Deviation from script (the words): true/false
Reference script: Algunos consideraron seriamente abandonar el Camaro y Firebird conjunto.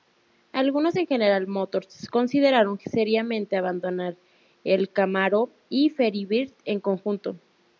true